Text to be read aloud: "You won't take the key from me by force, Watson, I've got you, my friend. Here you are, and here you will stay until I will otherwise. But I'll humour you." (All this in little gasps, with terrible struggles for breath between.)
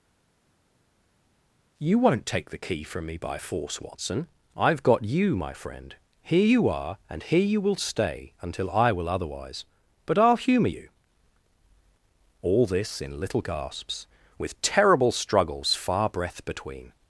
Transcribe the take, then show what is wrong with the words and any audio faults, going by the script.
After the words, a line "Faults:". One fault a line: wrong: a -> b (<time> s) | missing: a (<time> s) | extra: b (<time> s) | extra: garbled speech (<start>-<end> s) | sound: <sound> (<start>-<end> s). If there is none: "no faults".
"You won't take the key from me by force, Watson, I've got you, my friend. Here you are, and here you will stay until I will otherwise. But I'll humour you." (All this in little gasps, with terrible struggles far breath between.)
Faults:
wrong: for -> far (15.7 s)